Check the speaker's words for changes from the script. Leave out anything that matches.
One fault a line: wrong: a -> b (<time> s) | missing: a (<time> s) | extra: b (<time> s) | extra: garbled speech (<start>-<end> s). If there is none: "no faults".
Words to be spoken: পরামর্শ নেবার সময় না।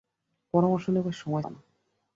no faults